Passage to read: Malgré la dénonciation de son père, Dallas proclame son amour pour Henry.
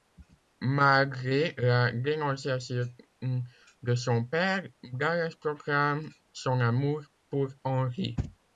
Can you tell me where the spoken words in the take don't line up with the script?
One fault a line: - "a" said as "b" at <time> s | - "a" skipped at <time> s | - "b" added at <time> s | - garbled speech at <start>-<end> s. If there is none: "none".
none